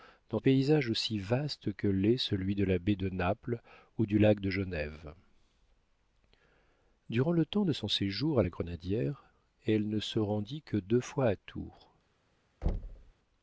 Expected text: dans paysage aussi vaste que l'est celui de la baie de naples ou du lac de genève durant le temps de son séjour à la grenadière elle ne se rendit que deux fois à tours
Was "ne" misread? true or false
false